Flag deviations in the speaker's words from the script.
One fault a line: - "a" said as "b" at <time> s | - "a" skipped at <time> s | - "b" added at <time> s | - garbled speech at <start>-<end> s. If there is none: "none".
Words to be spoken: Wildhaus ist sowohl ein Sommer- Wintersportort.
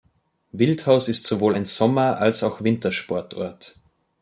- "als auch" added at 2.2 s